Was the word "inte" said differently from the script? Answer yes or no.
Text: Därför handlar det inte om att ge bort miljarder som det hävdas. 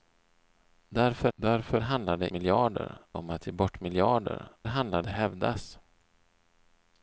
yes